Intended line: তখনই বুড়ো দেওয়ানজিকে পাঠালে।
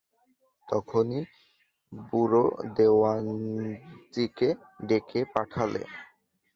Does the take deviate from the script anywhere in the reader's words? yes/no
yes